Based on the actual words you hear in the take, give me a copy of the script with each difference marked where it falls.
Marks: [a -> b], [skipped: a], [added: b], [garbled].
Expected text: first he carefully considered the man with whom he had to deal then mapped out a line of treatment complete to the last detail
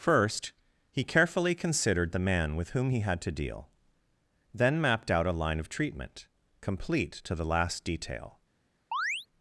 first he carefully considered the man with whom he had to deal then mapped out a line of treatment complete to the last detail